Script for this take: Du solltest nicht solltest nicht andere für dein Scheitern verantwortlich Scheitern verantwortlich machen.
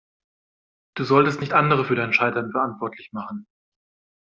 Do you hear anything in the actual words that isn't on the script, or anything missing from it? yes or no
yes